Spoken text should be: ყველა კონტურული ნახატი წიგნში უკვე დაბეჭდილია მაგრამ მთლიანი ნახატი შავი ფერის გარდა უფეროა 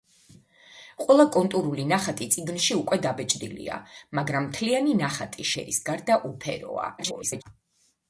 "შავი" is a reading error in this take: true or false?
true